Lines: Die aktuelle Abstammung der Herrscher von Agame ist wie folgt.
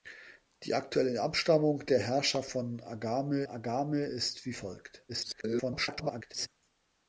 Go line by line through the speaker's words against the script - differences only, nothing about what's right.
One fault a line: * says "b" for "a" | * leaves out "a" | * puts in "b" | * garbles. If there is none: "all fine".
* puts in "Agame"
* garbles